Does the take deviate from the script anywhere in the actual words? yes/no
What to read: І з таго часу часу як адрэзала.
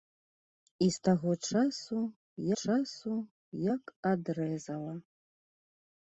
no